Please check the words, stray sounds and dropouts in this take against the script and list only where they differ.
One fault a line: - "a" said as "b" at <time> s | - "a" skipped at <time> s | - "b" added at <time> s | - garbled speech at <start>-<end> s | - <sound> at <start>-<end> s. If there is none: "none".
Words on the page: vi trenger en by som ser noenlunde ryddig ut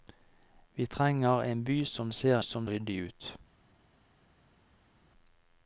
- "noenlunde" said as "som" at 2.4 s